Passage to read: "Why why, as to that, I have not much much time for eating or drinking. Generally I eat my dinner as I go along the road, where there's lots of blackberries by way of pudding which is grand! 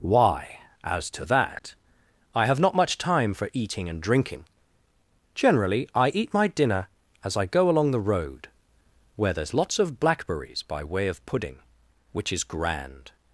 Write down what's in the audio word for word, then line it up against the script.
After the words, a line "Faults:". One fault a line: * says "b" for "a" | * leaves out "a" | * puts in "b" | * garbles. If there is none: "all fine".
"Why, as to that, I have not much time for eating and drinking. Generally I eat my dinner as I go along the road, where there's lots of blackberries by way of pudding which is grand!
Faults:
* leaves out "why"
* leaves out "much"
* says "and" for "or"